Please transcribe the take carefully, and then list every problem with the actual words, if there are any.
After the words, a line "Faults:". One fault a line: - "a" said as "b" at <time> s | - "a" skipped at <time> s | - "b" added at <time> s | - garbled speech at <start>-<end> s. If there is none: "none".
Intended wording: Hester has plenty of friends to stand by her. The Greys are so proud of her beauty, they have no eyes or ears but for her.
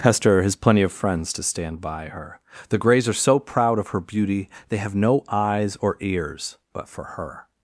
Hester has plenty of friends to stand by her. The Greys are so proud of her beauty, they have no eyes or ears but for her.
Faults:
none